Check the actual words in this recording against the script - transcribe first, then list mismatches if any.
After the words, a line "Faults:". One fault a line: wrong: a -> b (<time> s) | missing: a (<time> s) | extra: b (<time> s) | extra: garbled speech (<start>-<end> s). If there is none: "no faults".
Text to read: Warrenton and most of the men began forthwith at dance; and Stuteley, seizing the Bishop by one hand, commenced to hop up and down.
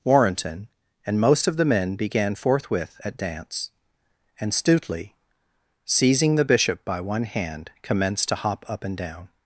Warrenton and most of the men began forthwith at dance; and Stuteley, seizing the Bishop by one hand, commenced to hop up and down.
Faults:
no faults